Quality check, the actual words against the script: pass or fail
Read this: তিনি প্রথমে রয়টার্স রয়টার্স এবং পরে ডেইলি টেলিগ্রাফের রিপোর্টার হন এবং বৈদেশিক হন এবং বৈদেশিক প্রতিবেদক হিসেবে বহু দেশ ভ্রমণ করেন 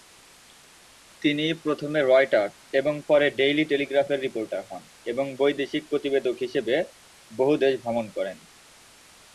fail